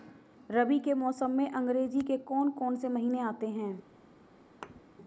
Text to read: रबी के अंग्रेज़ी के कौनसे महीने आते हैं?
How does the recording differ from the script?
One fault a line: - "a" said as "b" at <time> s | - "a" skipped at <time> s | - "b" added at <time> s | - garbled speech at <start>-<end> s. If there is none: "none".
- "मौसम में" added at 0.9 s
- "कौन" added at 2.1 s